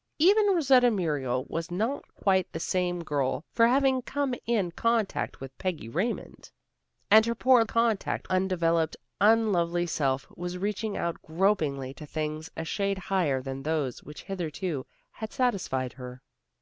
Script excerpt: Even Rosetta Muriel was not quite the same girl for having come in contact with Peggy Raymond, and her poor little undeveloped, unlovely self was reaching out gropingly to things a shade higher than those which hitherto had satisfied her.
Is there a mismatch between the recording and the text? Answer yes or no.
yes